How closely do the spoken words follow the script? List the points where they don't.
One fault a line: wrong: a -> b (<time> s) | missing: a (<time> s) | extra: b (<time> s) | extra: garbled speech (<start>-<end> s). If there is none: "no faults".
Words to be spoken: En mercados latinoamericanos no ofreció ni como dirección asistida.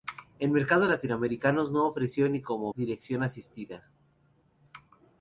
no faults